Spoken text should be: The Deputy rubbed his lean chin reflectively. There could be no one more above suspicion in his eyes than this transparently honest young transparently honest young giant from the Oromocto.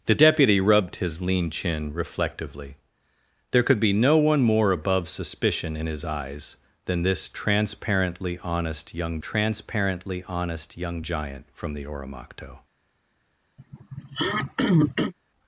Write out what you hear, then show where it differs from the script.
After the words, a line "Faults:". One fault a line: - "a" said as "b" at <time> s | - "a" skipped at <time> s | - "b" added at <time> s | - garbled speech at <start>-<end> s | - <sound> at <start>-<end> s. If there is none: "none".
The Deputy rubbed his lean chin reflectively. There could be no one more above suspicion in his eyes than this transparently honest young transparently honest young giant from the Oromocto.
Faults:
- throat clearing at 13.6-15.1 s